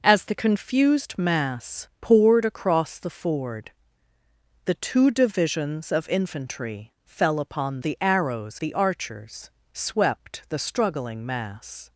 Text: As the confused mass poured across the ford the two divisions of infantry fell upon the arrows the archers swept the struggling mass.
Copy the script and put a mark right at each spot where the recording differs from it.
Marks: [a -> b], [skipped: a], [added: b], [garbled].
As the confused mass poured across the ford the two divisions of infantry fell upon the arrows the archers swept the struggling mass.